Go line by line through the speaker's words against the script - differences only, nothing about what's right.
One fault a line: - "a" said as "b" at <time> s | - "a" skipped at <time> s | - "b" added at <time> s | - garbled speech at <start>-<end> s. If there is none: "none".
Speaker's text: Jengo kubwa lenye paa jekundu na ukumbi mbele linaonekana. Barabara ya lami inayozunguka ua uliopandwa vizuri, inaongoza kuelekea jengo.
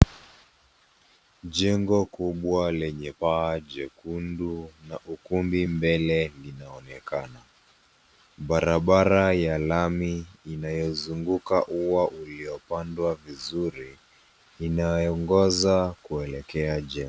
none